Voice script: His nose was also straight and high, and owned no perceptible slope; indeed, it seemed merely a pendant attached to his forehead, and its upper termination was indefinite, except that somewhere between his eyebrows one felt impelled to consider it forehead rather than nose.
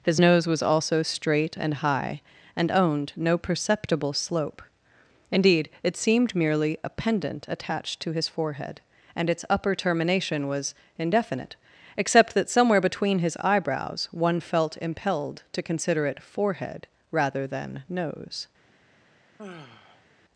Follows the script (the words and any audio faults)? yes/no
no